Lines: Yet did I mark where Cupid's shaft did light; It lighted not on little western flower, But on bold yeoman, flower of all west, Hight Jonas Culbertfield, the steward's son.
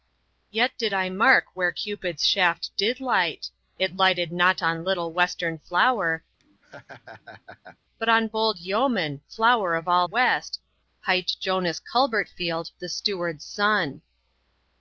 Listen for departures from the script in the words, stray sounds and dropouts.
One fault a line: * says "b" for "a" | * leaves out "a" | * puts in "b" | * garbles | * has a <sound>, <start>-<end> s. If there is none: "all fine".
* has a laugh, 6.4-7.8 s